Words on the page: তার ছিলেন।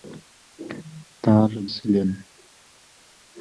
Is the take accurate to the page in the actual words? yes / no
yes